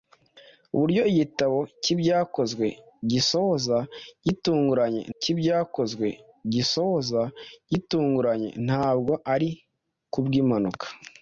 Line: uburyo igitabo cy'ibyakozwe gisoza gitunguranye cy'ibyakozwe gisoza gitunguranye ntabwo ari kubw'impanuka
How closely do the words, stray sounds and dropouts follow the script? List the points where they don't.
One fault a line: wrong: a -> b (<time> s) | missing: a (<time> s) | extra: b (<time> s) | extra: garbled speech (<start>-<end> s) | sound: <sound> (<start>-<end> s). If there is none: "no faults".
no faults